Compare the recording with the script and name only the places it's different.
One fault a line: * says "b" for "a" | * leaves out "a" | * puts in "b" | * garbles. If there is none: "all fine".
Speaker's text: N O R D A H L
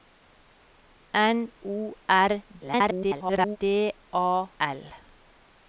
* garbles
* leaves out "H"